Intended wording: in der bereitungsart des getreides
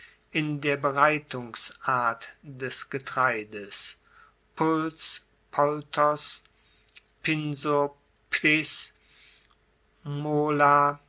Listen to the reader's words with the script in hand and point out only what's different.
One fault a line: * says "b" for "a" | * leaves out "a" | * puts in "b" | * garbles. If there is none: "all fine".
all fine